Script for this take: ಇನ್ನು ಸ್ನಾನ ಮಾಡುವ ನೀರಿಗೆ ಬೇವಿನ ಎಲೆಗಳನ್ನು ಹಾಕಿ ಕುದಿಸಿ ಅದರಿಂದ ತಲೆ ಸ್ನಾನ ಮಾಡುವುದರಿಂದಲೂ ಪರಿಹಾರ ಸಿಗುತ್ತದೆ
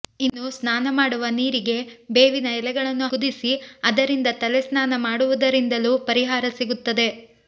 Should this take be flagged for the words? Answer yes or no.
yes